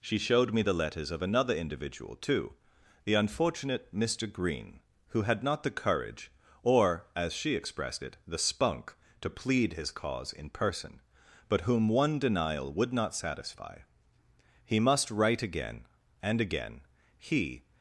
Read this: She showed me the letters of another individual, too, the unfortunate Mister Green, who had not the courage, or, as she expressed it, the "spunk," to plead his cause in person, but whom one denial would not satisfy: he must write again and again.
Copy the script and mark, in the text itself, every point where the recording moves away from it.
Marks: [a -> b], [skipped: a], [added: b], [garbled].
She showed me the letters of another individual, too, the unfortunate Mister Green, who had not the courage, or, as she expressed it, the "spunk," to plead his cause in person, but whom one denial would not satisfy: he must write again and again. [added: He]